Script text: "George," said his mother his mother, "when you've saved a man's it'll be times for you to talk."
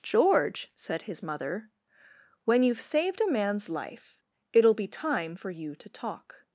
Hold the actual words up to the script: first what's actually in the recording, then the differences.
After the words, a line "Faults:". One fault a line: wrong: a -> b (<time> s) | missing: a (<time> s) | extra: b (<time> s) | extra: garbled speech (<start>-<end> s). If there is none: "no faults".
"George," said his mother, "when you've saved a man's life it'll be time for you to talk."
Faults:
missing: his mother (1.7 s)
extra: life (3.7 s)
wrong: times -> time (4.9 s)